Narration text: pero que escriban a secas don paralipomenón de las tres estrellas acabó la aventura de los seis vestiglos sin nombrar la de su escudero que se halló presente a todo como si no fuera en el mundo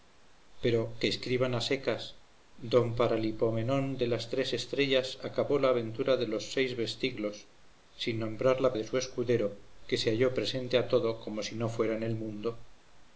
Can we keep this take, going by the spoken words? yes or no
yes